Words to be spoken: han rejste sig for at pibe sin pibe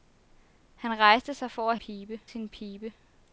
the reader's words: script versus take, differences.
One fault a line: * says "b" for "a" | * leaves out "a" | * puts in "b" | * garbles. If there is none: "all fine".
all fine